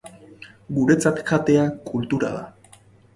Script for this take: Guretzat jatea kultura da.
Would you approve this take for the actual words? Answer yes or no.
yes